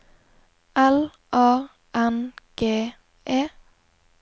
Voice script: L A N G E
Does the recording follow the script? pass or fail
pass